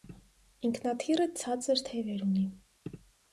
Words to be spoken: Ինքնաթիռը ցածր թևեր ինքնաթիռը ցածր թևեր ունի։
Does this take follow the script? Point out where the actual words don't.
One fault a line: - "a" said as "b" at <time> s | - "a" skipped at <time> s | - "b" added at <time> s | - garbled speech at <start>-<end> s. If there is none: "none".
- "ինքնաթիռը ցածր թևեր" skipped at 2.3 s